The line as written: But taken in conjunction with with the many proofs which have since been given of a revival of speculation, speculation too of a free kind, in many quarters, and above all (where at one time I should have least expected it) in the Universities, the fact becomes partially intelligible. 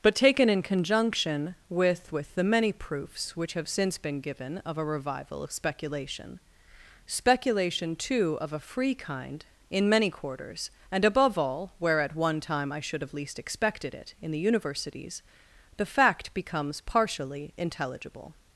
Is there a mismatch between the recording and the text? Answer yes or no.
no